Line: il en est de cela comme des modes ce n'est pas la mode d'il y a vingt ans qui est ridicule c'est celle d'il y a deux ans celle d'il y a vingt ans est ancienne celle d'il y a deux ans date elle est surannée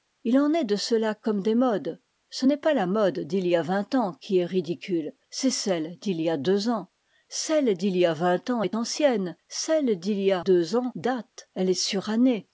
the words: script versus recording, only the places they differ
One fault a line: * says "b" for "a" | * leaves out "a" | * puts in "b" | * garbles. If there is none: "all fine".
all fine